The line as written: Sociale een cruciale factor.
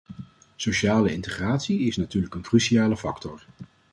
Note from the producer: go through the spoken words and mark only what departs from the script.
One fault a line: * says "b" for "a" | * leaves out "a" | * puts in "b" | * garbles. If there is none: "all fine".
* puts in "integratie is natuurlijk"